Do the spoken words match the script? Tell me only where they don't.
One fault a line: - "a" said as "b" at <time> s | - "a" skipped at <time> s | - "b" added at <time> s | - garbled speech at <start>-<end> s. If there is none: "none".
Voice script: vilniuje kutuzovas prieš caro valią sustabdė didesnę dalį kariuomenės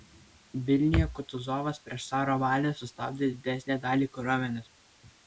none